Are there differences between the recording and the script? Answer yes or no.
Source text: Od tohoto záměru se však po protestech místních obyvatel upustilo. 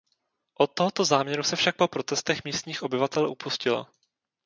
no